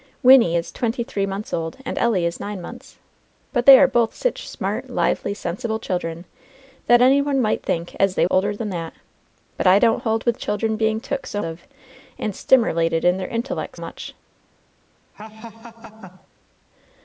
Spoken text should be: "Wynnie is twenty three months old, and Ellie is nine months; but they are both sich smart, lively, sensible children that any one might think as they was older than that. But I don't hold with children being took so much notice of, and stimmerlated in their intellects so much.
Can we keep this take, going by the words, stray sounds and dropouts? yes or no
no